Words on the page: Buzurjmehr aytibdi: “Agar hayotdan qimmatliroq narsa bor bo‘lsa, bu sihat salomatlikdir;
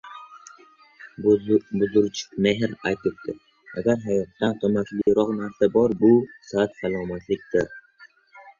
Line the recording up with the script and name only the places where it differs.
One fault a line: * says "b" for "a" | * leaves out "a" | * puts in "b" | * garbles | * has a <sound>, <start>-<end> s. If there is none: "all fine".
* has a dropout, 5.0-5.1 s
* leaves out "bo‘lsa"